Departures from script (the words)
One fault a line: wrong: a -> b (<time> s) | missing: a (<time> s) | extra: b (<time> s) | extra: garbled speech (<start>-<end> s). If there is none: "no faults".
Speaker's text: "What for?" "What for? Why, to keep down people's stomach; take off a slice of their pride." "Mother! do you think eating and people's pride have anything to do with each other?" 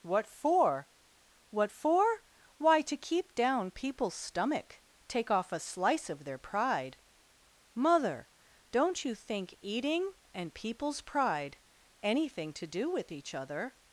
wrong: do -> don't (8.7 s)
missing: have (11.6 s)